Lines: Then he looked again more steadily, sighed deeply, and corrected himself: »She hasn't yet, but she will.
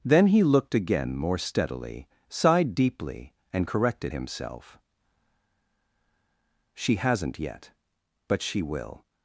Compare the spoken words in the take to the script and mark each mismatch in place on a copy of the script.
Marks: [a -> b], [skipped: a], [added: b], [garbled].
Then he looked again more steadily, sighed deeply, and corrected himself: »She hasn't yet, but she will.